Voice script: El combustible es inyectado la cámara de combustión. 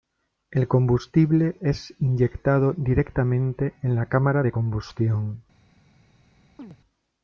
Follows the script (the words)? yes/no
no